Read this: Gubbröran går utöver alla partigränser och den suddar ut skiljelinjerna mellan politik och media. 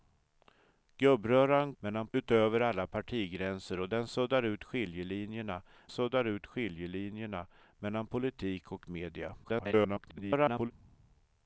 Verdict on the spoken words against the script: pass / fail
fail